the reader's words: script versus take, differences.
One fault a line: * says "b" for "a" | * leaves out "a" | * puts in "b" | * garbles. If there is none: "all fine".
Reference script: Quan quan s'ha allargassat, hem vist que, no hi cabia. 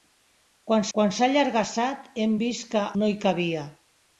all fine